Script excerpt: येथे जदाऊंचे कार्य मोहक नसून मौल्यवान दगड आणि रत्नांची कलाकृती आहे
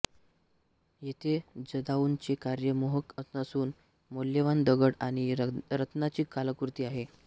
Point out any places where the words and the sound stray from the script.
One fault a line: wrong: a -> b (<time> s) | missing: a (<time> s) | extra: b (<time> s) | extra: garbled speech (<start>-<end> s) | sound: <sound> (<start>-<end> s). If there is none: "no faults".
no faults